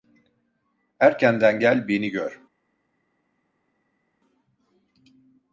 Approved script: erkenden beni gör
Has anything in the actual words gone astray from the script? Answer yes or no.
yes